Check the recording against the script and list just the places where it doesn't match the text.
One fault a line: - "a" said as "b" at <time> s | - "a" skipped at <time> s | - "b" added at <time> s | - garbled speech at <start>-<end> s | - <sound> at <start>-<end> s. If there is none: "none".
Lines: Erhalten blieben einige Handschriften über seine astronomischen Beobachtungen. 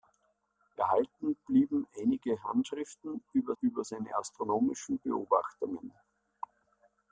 - "über" added at 3.6 s